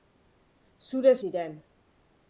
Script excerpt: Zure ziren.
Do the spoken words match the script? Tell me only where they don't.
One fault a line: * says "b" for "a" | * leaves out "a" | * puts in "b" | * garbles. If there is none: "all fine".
all fine